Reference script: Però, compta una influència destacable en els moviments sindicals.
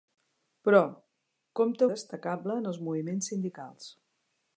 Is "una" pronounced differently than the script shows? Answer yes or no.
yes